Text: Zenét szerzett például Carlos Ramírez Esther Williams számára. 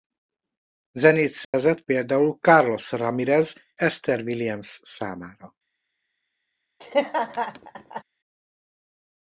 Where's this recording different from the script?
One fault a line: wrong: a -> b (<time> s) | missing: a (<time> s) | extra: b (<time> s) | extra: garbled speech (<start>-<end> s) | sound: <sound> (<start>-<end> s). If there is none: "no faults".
sound: dropout (1.4-1.5 s)
sound: laugh (6.8-8.0 s)